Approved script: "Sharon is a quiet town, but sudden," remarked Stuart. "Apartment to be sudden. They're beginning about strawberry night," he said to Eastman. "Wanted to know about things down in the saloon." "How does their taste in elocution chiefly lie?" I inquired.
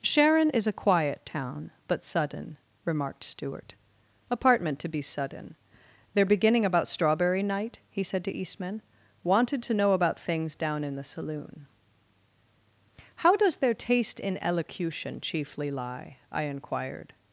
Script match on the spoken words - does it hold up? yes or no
yes